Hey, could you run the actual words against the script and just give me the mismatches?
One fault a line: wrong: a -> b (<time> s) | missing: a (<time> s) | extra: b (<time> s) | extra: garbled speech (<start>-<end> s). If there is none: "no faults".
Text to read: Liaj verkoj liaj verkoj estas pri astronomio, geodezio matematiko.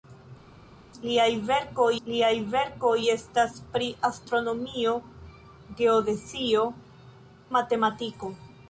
no faults